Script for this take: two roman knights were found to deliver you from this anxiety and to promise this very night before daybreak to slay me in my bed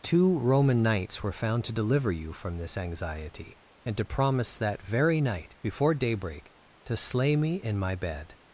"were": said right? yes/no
yes